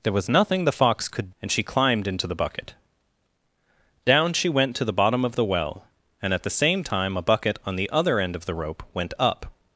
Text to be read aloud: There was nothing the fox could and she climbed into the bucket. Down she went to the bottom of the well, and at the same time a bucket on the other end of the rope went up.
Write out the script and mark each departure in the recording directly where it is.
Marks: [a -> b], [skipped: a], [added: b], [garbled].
There was nothing the fox could and she climbed into the bucket. Down she went to the bottom of the well, and at the same time a bucket on the other end of the rope went up.